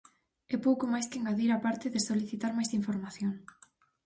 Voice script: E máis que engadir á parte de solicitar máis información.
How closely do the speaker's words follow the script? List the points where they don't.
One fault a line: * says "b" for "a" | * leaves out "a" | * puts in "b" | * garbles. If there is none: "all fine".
* puts in "pouco"